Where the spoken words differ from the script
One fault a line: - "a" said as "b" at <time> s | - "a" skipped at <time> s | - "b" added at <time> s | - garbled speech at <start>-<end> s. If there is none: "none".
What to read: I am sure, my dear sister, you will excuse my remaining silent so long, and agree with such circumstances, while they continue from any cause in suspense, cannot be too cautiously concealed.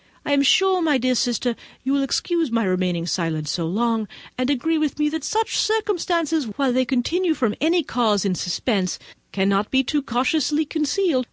- "me that" added at 5.0 s